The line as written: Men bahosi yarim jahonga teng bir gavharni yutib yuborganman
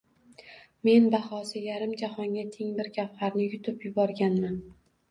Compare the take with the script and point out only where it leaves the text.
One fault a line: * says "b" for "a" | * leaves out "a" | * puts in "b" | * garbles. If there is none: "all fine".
all fine